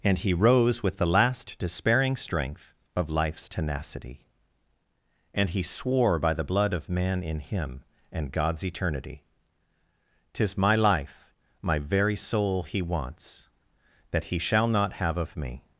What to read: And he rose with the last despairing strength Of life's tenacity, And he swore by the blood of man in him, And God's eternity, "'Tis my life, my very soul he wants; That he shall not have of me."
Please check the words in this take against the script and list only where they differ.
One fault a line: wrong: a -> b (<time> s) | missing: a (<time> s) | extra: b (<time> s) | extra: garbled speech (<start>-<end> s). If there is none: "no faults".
no faults